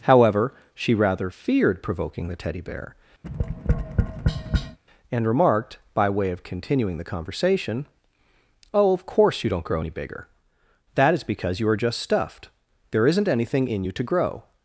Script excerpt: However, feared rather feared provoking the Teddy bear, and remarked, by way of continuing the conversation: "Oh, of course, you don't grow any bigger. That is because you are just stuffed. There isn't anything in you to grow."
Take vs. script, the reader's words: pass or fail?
fail